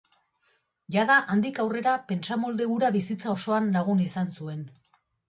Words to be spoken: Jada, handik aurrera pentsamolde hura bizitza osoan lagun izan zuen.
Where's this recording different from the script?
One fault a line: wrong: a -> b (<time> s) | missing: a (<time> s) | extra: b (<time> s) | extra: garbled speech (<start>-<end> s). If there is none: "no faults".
no faults